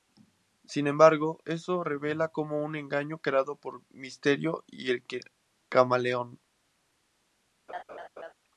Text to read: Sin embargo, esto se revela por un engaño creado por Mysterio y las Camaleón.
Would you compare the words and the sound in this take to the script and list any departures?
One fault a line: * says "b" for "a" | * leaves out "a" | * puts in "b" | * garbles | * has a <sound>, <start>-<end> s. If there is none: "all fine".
* says "como" for "por"
* says "el" for "las"
* has a laugh, 7.7-8.3 s